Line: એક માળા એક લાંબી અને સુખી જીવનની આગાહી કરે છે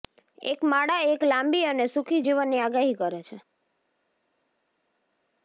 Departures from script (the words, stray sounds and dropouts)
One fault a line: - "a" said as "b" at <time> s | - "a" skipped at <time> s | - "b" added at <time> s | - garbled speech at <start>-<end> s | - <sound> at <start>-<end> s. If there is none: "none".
none